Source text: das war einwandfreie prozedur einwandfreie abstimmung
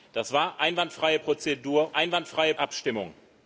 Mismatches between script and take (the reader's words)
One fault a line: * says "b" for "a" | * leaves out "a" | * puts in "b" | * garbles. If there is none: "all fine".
all fine